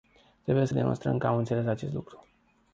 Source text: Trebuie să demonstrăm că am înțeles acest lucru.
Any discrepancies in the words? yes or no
no